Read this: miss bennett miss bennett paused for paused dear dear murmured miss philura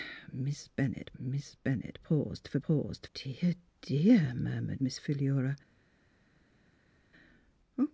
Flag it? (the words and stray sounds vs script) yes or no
no